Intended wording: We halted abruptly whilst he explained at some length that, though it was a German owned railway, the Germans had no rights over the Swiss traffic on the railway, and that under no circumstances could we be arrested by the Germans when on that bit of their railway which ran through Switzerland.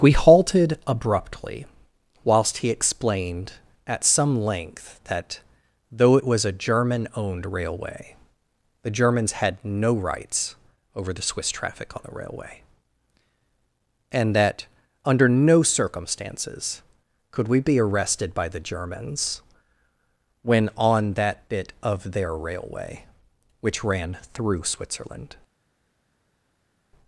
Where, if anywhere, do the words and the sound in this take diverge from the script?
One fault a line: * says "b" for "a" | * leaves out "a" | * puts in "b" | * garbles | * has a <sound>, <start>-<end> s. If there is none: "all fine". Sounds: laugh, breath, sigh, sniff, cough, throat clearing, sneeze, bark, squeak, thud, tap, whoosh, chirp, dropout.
all fine